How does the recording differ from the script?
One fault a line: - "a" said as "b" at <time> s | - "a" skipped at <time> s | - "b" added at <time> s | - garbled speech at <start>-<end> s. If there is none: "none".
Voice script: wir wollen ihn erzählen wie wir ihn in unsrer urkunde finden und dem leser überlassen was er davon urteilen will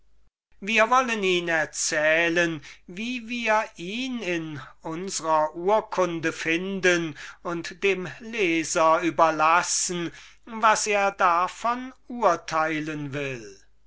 none